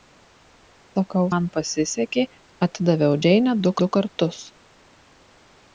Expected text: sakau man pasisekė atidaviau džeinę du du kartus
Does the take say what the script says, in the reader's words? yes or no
yes